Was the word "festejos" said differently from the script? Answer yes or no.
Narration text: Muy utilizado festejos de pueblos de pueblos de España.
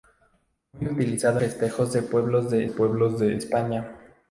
no